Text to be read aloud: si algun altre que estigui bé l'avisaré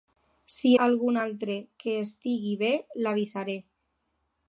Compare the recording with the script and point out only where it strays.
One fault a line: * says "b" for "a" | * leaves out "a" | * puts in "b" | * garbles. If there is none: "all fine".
all fine